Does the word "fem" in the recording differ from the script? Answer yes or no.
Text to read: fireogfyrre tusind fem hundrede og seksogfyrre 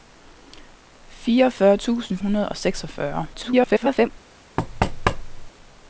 yes